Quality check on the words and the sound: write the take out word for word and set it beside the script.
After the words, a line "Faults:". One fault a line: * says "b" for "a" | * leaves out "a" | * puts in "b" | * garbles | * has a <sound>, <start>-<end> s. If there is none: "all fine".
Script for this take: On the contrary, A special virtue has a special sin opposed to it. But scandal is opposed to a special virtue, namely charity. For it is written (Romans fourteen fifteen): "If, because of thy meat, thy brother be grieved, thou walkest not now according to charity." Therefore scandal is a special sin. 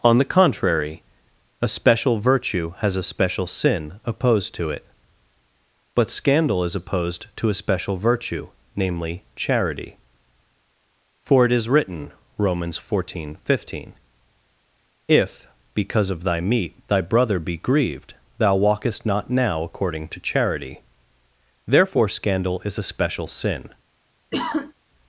On the contrary, A special virtue has a special sin opposed to it. But scandal is opposed to a special virtue, namely charity. For it is written (Romans fourteen fifteen): "If, because of thy meat, thy brother be grieved, thou walkest not now according to charity." Therefore scandal is a special sin.
Faults:
* has a sigh, 24.3-24.7 s